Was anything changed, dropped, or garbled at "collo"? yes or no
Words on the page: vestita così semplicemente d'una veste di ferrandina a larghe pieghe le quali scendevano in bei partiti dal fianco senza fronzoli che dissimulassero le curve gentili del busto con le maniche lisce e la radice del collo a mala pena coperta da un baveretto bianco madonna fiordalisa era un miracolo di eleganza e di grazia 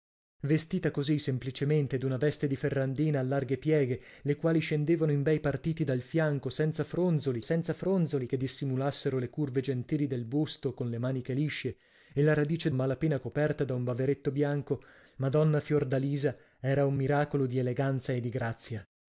yes